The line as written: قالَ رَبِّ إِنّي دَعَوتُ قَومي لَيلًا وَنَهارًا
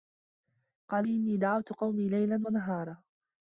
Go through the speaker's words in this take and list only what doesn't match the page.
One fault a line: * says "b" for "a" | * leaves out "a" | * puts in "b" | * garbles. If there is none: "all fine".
* leaves out "رَبِّ"